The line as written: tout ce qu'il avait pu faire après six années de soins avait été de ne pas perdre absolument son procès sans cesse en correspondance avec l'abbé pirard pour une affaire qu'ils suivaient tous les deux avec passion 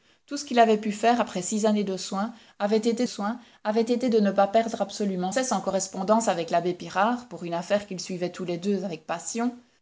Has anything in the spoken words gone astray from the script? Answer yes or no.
yes